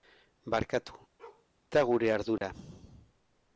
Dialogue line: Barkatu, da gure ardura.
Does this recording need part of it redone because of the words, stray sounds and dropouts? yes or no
yes